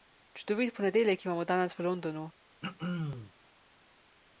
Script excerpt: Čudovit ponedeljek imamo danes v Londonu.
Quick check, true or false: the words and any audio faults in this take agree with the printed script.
false